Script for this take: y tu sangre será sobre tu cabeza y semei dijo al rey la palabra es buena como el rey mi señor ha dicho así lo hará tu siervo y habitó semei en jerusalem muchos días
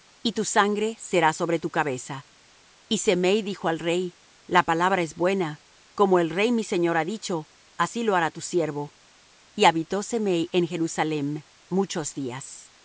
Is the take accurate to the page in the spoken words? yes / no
yes